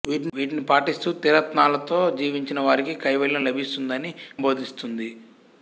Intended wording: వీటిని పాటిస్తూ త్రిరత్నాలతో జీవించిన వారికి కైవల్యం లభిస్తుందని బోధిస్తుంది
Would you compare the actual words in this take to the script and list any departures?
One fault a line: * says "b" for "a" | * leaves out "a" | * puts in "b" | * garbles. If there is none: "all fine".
all fine